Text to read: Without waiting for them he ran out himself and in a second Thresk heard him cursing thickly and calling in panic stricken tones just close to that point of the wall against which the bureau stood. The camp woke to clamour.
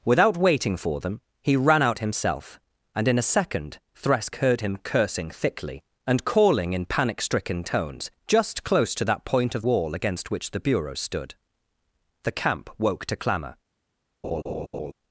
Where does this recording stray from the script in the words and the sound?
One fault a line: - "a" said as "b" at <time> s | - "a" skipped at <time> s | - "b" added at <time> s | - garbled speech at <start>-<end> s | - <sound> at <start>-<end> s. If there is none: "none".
- "the" skipped at 9.6 s
- laugh at 14.2-14.9 s